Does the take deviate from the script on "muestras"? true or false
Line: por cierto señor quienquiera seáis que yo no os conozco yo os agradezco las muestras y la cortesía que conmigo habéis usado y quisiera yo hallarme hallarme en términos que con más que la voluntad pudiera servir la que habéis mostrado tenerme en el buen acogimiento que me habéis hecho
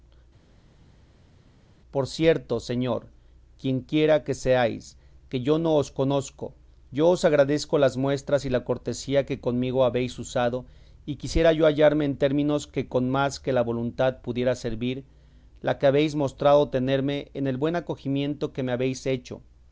false